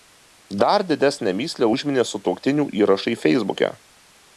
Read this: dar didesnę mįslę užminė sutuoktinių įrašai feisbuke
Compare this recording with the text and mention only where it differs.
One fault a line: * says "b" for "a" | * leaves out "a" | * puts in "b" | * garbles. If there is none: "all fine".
all fine